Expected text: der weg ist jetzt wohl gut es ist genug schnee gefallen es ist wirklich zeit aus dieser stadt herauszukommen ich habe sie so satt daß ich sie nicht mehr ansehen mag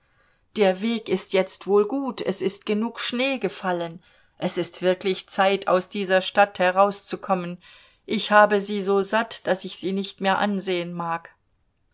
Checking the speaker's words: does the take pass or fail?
pass